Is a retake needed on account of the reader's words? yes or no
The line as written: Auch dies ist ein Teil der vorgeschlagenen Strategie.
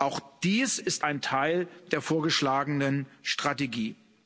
no